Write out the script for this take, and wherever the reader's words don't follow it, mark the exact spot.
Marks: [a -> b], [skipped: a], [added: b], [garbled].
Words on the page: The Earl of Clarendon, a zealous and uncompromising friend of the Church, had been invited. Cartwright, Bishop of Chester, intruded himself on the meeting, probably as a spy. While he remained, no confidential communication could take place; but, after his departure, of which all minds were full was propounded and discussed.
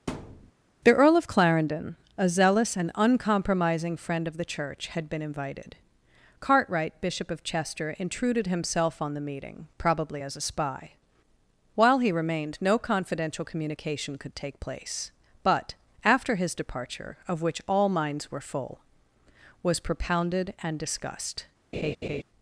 The Earl of Clarendon, a zealous and uncompromising friend of the Church, had been invited. Cartwright, Bishop of Chester, intruded himself on the meeting, probably as a spy. While he remained, no confidential communication could take place; but, after his departure, of which all minds were full was propounded and discussed.